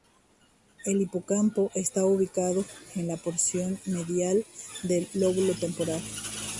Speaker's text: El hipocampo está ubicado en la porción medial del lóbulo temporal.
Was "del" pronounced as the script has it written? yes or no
yes